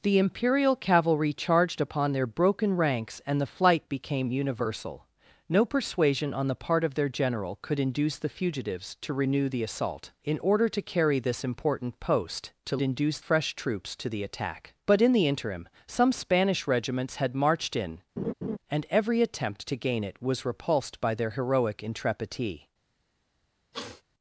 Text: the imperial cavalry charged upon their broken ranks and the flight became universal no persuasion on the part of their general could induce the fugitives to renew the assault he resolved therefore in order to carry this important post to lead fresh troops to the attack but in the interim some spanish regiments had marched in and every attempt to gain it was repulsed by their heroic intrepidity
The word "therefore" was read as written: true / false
false